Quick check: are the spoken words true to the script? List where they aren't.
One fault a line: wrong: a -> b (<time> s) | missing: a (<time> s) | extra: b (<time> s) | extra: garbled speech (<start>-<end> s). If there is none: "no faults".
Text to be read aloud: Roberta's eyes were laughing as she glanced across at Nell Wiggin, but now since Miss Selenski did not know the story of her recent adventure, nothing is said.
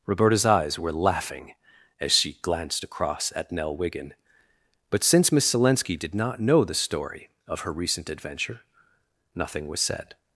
missing: now (5.0 s)
wrong: is -> was (9.7 s)